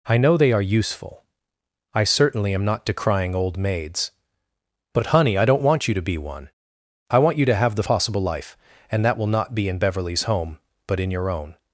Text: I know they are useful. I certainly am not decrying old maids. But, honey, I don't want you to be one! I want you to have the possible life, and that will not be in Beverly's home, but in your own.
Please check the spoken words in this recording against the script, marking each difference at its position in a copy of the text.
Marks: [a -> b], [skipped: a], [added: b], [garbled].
I know they are useful. I certainly am not decrying old maids. But, honey, I don't want you to be one! I want you to have the possible life, and that will not be in Beverly's home, but in your own.